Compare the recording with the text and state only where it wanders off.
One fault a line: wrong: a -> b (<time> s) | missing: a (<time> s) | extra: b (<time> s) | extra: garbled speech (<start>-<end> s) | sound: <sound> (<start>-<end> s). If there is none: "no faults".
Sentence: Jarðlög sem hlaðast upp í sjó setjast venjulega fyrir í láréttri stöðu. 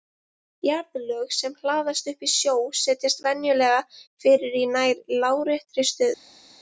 extra: nær (4.7 s)